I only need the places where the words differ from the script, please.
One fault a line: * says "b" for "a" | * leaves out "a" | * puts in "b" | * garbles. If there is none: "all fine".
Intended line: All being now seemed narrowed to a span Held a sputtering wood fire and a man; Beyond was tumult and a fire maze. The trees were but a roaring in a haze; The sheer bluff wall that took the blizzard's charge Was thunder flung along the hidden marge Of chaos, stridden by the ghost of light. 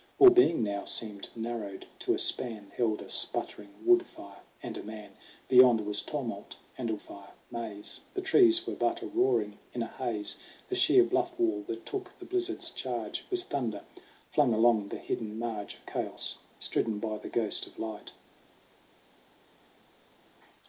all fine